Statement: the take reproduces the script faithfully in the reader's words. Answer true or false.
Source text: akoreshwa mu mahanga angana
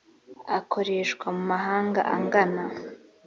true